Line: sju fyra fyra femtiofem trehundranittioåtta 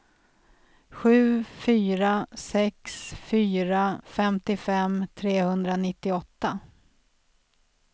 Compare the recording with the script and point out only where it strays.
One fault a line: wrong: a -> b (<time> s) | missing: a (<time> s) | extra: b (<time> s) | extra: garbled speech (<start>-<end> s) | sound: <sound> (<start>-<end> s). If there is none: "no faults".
extra: sex (2.3 s)